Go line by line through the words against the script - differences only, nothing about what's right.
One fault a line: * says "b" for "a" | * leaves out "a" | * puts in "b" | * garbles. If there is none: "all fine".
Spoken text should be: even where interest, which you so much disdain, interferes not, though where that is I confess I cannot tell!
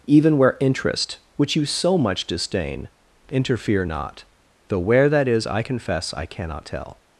* says "interfere" for "interferes"